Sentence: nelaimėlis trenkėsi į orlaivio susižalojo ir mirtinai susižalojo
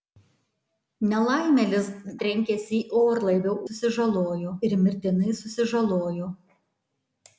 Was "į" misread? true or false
false